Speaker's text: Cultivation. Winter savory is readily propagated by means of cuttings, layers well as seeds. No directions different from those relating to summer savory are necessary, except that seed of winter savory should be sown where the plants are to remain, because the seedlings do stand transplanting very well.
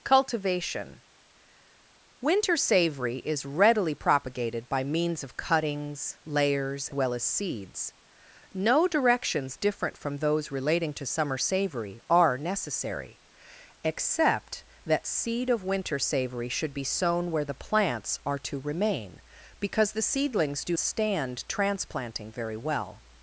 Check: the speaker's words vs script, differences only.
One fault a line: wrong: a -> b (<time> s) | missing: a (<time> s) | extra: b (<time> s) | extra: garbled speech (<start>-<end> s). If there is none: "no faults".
no faults